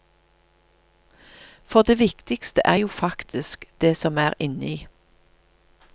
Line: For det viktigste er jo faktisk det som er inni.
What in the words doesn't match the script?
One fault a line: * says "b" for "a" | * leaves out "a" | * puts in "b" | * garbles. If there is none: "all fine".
all fine